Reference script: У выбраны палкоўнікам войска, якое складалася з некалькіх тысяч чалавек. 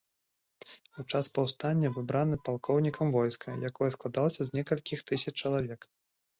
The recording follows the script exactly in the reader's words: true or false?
false